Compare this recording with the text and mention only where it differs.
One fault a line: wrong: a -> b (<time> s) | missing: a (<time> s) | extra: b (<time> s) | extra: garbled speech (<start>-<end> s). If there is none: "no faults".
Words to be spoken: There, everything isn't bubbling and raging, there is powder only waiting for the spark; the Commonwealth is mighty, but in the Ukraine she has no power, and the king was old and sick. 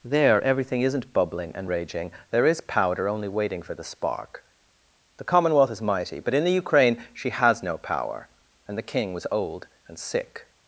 no faults